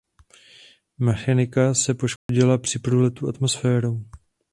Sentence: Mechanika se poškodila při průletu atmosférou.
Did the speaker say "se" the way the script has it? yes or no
yes